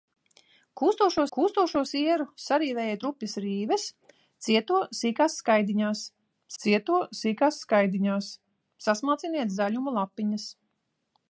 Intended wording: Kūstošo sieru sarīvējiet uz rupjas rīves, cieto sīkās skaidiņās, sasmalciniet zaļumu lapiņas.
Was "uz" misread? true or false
true